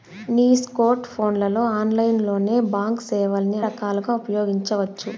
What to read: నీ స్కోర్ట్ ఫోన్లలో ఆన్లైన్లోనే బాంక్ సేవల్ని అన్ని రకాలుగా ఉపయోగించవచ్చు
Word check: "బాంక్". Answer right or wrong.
right